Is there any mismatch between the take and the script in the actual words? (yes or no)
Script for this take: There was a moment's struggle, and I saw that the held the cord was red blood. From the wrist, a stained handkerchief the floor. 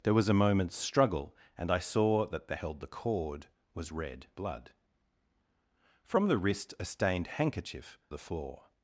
no